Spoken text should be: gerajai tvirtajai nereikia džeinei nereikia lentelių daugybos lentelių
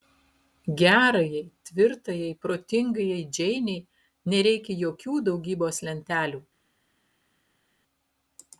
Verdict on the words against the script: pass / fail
fail